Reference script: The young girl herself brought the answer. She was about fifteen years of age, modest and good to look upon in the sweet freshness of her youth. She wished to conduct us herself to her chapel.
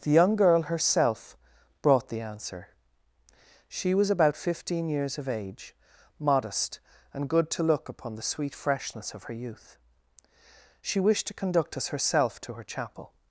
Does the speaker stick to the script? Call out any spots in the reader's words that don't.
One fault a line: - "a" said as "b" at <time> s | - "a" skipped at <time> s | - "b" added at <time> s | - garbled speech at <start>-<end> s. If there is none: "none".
- "in" skipped at 8.2 s